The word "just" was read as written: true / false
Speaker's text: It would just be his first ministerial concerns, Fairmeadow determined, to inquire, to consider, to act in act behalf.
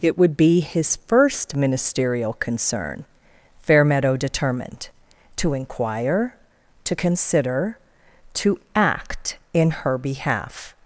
false